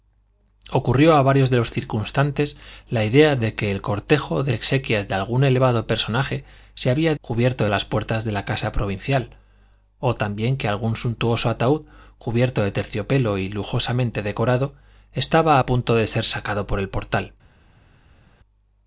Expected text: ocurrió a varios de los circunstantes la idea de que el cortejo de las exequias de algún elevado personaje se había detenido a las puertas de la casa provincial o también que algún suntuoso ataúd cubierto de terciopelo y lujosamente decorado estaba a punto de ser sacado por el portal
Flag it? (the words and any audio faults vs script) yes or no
yes